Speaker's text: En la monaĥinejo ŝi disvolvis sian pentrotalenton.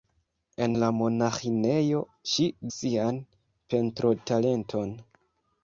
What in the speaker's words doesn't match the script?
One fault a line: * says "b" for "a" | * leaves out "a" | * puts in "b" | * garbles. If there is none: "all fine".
* leaves out "disvolvis"